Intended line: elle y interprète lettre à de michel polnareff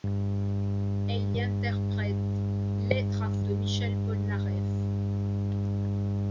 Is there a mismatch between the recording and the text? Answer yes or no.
no